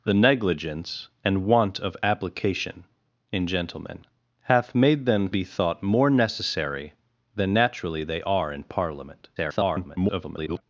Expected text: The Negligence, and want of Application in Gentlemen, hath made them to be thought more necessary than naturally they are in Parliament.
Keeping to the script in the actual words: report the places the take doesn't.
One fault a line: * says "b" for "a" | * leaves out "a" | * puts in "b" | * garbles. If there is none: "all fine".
* leaves out "to"
* garbles